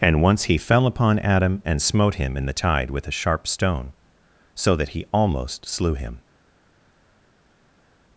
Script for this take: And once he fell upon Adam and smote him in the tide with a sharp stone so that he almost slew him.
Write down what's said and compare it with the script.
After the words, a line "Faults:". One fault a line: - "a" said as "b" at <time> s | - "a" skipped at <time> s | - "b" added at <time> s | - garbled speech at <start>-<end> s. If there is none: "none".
And once he fell upon Adam and smote him in the tide with a sharp stone so that he almost slew him.
Faults:
none